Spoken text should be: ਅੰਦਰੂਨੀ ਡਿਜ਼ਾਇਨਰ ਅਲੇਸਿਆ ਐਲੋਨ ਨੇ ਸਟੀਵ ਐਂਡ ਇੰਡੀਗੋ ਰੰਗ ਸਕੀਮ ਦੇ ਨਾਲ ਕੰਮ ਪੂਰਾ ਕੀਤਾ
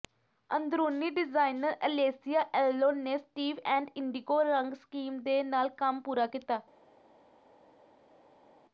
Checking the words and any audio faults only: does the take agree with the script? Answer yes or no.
yes